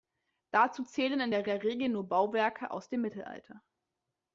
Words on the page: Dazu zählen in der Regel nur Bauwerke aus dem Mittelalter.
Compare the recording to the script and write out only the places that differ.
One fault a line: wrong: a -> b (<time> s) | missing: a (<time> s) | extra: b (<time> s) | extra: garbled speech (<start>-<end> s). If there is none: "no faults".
extra: der (1.5 s)